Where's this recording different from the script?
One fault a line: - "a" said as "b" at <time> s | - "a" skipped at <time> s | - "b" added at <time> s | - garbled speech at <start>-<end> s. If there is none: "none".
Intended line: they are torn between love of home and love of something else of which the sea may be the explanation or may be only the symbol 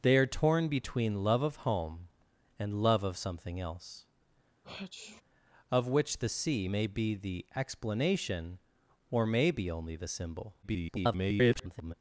- garbled speech at 10.6-11.9 s